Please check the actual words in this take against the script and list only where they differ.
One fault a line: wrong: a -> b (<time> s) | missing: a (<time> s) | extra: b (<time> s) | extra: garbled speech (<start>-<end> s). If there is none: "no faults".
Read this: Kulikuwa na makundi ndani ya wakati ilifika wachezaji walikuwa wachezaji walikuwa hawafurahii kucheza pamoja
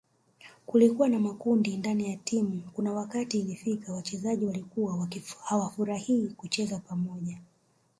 extra: timu kuna (2.2 s)
missing: wachezaji walikuwa (5.1 s)